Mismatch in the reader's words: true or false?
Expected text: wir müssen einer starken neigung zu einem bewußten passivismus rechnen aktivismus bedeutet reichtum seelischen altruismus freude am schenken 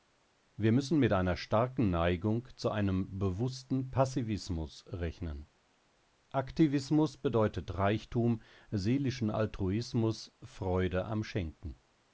true